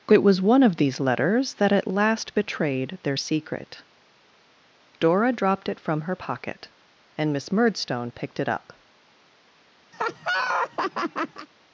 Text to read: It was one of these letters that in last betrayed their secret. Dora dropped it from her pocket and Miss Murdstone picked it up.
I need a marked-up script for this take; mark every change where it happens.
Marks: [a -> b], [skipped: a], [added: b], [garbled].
It was one of these letters that [in -> at] last betrayed their secret. Dora dropped it from her pocket and Miss Murdstone picked it up.